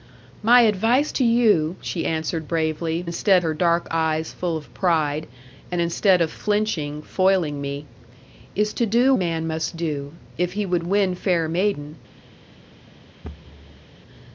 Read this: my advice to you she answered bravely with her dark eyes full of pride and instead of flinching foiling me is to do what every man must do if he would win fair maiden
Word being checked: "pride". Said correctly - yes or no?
yes